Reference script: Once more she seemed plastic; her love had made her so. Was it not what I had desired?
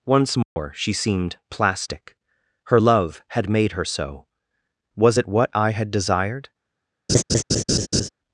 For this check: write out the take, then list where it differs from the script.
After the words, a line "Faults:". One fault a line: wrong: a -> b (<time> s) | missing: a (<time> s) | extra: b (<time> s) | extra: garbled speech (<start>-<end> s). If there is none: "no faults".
Once more she seemed plastic; her love had made her so. Was it what I had desired?
Faults:
missing: not (5.3 s)